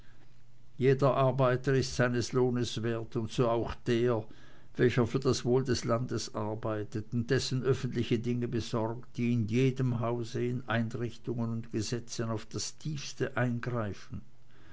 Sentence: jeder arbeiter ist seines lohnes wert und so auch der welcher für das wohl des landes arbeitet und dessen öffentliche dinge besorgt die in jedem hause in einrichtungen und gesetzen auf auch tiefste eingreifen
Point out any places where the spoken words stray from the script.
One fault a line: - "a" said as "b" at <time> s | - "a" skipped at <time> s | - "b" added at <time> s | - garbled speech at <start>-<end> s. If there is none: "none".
- "auch" said as "das" at 12.4 s